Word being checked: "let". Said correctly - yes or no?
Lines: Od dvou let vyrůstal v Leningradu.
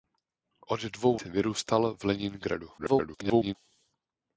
no